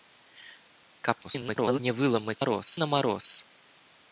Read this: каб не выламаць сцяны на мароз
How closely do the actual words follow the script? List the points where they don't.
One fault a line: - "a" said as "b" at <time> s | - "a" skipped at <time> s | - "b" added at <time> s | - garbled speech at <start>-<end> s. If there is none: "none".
- garbled speech at 1.2-1.8 s
- "сцяны" said as "мароз" at 2.4 s